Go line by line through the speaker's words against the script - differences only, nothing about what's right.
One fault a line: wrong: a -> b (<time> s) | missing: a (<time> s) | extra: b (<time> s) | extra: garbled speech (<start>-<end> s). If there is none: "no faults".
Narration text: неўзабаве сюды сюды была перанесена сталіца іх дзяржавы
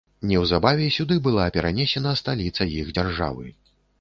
missing: сюды (1.2 s)